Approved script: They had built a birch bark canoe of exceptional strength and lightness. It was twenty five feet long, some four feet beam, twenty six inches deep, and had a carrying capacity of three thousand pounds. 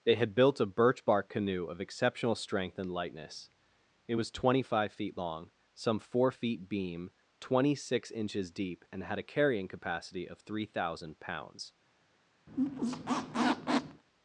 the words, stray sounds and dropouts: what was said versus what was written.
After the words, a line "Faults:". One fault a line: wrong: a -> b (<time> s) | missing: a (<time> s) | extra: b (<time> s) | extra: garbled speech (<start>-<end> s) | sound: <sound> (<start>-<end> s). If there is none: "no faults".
They had built a birch bark canoe of exceptional strength and lightness. It was twenty five feet long, some four feet beam, twenty six inches deep, and had a carrying capacity of three thousand pounds.
Faults:
sound: squeak (12.5-14.0 s)